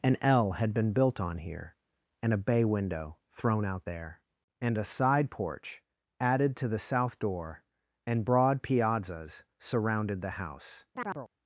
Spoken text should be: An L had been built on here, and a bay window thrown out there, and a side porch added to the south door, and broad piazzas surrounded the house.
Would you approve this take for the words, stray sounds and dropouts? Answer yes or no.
no